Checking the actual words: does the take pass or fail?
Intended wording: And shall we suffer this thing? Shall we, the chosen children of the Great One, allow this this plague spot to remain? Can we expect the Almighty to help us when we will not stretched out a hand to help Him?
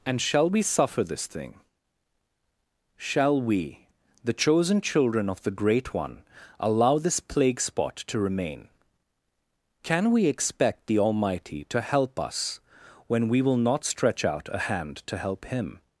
fail